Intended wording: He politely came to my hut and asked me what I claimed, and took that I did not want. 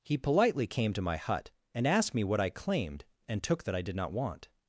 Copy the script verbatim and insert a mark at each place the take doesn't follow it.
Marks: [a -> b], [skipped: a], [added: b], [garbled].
He politely came to my hut and asked me what I claimed, and took that I did not want.